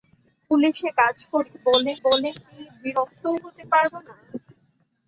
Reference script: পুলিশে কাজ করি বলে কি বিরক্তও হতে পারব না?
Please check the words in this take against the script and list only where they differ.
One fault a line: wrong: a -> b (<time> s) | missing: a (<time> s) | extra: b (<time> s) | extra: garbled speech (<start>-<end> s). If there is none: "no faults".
extra: বলে (2.1 s)